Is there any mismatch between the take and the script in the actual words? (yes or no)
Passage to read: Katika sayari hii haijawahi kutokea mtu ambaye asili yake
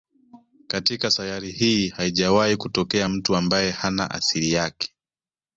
yes